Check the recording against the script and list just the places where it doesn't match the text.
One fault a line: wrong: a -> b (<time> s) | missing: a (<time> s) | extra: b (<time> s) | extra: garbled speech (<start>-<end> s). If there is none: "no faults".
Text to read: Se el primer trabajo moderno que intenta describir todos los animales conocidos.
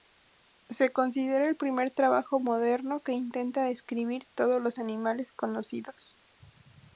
extra: considera (0.9 s)